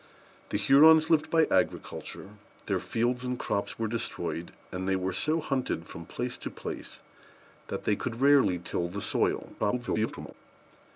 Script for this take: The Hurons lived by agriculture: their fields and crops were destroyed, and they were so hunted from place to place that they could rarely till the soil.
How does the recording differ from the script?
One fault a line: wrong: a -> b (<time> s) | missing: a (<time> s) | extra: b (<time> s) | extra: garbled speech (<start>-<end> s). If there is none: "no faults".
extra: garbled speech (9.6-10.3 s)